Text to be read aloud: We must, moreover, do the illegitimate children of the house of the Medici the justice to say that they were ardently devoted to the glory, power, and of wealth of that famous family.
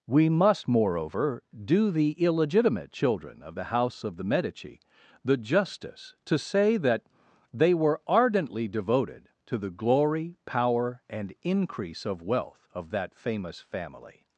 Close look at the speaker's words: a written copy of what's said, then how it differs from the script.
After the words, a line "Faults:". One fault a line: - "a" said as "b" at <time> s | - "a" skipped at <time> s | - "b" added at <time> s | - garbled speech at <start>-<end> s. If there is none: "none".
We must, moreover, do the illegitimate children of the house of the Medici the justice to say that they were ardently devoted to the glory, power, and increase of wealth of that famous family.
Faults:
- "increase" added at 11.4 s